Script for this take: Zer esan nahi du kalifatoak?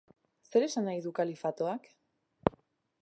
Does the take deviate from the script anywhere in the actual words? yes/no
no